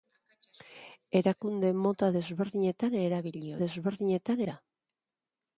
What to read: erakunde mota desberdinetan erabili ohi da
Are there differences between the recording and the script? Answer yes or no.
yes